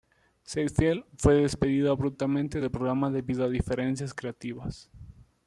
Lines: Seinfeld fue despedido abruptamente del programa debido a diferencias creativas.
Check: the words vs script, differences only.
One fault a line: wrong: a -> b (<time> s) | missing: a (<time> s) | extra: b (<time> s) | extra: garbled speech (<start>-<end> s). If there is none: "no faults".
no faults